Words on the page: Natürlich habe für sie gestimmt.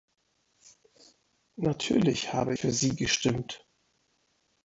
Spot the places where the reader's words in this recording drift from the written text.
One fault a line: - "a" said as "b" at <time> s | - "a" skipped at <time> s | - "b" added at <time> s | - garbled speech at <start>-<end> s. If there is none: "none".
none